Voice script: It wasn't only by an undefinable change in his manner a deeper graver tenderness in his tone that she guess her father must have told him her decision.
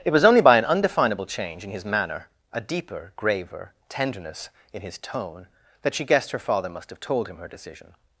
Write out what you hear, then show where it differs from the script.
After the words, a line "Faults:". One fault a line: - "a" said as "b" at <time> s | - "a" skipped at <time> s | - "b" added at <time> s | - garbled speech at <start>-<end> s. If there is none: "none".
It was only by an undefinable change in his manner a deeper graver tenderness in his tone that she guessed her father must have told him her decision.
Faults:
- "wasn't" said as "was" at 0.1 s
- "guess" said as "guessed" at 6.0 s